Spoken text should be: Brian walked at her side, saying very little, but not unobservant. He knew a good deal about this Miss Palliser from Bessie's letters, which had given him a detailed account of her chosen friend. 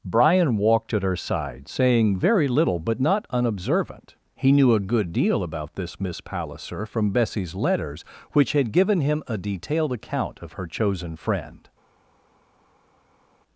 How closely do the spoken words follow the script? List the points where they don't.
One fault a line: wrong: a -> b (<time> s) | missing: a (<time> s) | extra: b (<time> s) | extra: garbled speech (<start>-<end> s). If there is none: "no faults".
no faults